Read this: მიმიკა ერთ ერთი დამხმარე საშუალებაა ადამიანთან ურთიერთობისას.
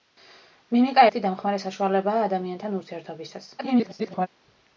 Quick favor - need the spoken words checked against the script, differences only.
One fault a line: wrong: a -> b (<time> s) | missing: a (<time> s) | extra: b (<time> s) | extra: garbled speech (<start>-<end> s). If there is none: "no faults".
missing: ერთ (1.0 s)
extra: garbled speech (3.6-4.3 s)